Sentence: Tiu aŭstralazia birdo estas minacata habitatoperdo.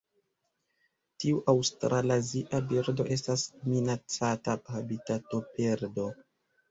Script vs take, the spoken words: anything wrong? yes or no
no